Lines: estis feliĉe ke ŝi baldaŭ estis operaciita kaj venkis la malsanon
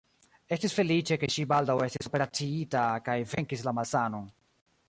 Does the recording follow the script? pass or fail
pass